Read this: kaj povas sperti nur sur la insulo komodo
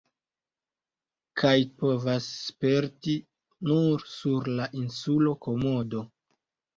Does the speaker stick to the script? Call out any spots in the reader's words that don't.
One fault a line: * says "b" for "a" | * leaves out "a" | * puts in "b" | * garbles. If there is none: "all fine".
all fine